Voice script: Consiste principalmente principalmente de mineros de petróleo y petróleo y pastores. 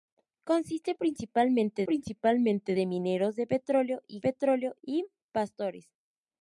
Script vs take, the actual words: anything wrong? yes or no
no